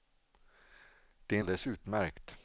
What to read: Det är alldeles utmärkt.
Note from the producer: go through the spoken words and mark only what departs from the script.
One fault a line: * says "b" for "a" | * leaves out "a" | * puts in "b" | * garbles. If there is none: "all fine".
all fine